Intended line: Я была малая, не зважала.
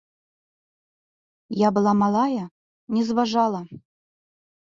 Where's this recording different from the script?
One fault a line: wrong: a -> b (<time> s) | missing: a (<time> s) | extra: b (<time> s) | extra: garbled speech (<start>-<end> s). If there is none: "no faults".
no faults